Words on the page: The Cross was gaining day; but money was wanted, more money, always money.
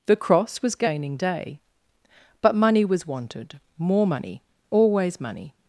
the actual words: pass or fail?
pass